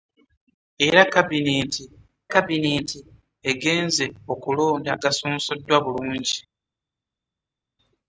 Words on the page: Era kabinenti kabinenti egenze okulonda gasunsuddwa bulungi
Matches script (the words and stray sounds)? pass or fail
pass